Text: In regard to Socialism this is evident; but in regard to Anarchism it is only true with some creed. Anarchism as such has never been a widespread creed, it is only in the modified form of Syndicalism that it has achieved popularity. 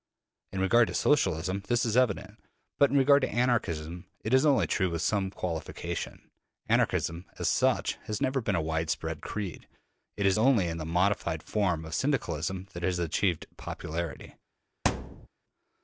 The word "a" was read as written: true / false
true